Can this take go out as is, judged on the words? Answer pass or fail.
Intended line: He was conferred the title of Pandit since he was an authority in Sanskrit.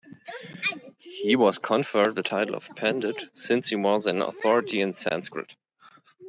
pass